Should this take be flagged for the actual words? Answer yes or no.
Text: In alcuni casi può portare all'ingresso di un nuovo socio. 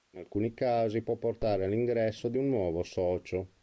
no